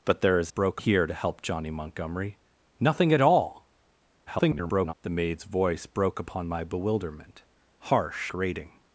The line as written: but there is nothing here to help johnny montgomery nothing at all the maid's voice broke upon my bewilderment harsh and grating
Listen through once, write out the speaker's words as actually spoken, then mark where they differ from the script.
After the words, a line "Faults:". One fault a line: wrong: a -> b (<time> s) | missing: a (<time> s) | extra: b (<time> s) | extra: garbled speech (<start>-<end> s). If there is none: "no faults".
but there is broke here to help johnny montgomery nothing at all [garbled] the maid's voice broke upon my bewilderment harsh grating
Faults:
wrong: nothing -> broke (0.5 s)
extra: garbled speech (4.3-4.9 s)
missing: and (8.3 s)